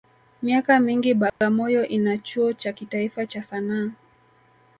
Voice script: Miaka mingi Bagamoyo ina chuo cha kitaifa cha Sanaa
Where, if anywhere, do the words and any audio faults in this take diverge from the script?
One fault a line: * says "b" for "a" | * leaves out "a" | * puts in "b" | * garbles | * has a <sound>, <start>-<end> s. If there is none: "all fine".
* has a dropout, 1.3-1.4 s